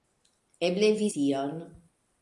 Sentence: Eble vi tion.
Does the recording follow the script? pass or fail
pass